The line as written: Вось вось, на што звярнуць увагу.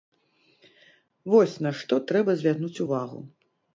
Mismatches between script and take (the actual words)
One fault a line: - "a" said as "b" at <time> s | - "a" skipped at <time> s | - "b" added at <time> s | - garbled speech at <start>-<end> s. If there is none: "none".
- "вось" skipped at 1.6 s
- "трэба" added at 2.1 s